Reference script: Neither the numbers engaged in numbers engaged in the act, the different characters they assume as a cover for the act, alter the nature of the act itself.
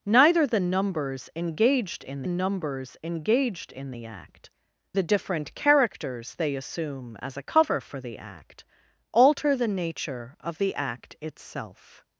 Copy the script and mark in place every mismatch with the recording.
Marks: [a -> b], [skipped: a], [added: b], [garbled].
Neither the numbers engaged in numbers engaged in the act, the different characters they assume as a cover for the act, alter the nature of the act itself.